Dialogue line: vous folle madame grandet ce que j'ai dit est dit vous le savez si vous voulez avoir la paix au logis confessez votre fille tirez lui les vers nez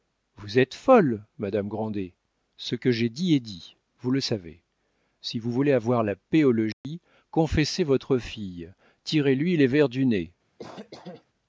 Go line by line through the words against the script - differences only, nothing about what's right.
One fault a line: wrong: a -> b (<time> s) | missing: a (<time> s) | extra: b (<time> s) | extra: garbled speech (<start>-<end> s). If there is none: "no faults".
extra: êtes (0.6 s)
extra: du (9.9 s)